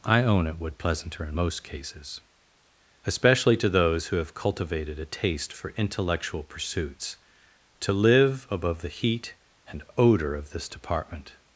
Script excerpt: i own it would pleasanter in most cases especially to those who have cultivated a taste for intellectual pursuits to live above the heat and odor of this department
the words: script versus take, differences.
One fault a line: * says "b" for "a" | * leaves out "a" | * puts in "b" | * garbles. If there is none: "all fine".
all fine